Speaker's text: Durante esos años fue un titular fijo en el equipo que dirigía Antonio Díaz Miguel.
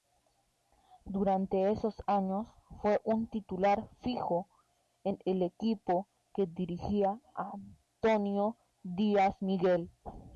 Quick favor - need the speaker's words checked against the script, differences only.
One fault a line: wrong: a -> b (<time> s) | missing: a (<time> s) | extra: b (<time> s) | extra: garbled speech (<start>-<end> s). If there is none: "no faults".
no faults